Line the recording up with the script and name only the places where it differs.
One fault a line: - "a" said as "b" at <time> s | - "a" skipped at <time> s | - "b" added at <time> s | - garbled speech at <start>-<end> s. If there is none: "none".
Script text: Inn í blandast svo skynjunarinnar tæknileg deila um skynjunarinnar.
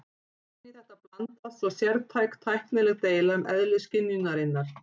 - "þetta" added at 0.7 s
- "skynjunarinnar" said as "sértæk" at 1.8 s
- "eðli" added at 3.6 s